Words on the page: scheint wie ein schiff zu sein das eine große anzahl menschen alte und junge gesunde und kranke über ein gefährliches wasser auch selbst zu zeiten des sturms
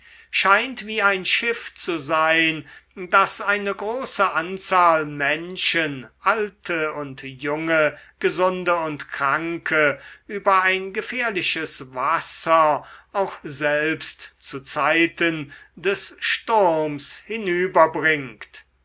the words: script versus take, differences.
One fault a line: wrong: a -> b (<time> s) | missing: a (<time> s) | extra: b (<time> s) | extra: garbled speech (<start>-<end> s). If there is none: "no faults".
no faults